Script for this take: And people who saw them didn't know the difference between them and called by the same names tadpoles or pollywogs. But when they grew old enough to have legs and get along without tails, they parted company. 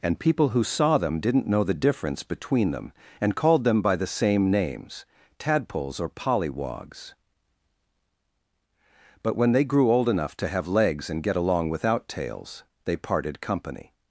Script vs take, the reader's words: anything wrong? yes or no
yes